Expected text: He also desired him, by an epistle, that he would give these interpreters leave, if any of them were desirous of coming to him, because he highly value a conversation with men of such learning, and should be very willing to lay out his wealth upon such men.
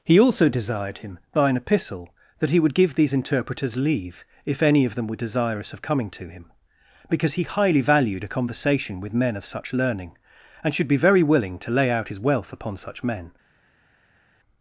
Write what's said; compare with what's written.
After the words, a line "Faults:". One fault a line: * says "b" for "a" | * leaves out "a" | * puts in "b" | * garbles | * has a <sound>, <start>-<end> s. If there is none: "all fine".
He also desired him, by an epistle, that he would give these interpreters leave, if any of them were desirous of coming to him, because he highly valued a conversation with men of such learning, and should be very willing to lay out his wealth upon such men.
Faults:
* says "valued" for "value"